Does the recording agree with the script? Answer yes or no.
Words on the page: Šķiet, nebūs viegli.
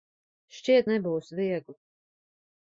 yes